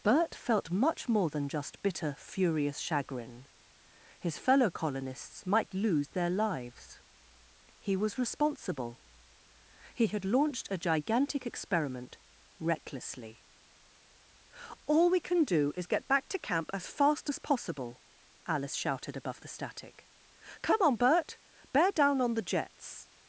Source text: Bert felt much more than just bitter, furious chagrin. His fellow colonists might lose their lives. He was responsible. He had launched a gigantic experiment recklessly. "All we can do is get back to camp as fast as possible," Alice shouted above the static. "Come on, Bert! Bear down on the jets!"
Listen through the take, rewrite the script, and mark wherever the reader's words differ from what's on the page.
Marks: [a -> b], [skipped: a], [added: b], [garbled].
Bert felt much more than just bitter, furious chagrin. His fellow colonists might lose their lives. He was responsible. He had launched a gigantic experiment recklessly. "All we can do is get back to camp as fast as possible," Alice shouted above the static. "Come on, Bert! Bear down on the jets!"